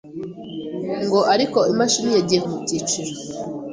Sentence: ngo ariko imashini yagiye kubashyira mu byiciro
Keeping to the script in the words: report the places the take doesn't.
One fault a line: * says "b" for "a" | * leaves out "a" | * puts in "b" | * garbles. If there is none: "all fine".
* leaves out "kubashyira"